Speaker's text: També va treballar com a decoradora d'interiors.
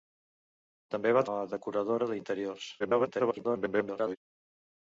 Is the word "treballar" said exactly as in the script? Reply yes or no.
no